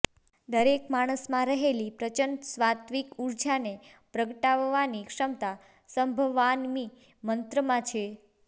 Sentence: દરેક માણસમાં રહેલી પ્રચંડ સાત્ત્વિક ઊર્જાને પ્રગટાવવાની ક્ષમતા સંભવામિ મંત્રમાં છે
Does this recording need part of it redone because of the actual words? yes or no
no